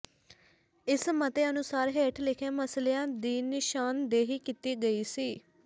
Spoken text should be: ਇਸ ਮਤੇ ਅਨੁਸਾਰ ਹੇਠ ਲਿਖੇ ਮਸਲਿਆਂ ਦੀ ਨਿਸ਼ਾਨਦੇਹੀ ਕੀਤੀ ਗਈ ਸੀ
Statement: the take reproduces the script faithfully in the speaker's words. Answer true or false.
true